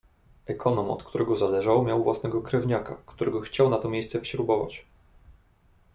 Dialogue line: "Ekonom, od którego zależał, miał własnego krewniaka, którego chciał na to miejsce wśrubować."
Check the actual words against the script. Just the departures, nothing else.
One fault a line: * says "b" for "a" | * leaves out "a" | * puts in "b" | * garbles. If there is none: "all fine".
all fine